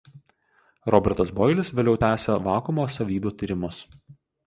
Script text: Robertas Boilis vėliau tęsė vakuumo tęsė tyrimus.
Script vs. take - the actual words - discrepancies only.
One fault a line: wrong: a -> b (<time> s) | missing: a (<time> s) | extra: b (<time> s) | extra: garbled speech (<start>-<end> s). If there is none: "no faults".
wrong: tęsė -> savybių (3.0 s)